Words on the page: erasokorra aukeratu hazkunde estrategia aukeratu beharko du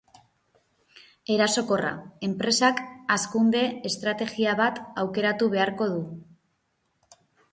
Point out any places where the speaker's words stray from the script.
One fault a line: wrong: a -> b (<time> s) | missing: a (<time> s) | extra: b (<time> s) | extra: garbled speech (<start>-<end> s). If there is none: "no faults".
wrong: aukeratu -> enpresak (2.3 s)
extra: bat (4.6 s)